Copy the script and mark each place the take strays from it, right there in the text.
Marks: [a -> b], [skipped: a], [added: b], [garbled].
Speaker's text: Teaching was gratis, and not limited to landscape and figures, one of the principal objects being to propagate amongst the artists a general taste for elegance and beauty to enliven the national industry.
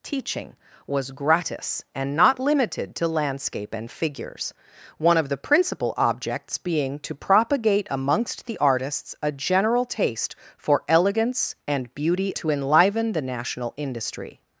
Teaching was gratis, and not limited to landscape and figures, one of the principal objects being to propagate amongst the artists a general taste for elegance and beauty to enliven the national industry.